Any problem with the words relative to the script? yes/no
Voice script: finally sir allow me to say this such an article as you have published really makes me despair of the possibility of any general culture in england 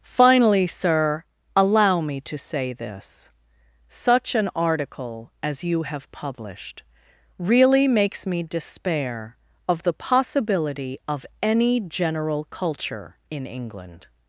no